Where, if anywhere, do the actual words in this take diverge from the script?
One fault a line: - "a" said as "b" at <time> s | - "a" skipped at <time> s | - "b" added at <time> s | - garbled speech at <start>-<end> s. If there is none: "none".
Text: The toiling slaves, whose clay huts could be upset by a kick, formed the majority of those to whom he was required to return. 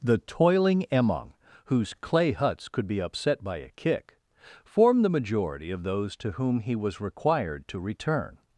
- "slaves" said as "emong" at 0.9 s